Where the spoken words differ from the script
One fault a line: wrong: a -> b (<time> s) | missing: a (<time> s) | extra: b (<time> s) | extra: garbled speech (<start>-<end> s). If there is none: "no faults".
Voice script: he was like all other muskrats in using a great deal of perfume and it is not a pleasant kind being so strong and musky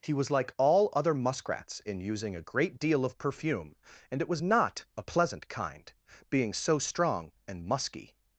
wrong: is -> was (4.3 s)